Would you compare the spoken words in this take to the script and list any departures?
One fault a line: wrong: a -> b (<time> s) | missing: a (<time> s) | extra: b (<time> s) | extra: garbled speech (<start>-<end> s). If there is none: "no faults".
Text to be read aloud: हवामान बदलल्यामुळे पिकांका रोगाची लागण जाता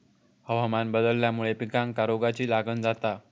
no faults